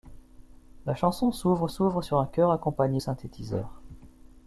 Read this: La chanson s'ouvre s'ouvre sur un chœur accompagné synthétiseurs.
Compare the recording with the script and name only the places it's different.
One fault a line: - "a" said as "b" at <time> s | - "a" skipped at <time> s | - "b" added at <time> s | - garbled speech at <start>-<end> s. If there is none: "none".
none